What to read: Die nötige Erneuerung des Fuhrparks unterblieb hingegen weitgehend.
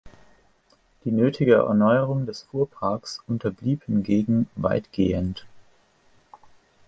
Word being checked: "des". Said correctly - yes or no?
yes